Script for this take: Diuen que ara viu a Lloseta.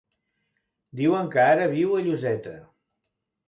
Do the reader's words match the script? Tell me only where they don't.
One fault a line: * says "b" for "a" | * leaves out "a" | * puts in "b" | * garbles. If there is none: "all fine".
all fine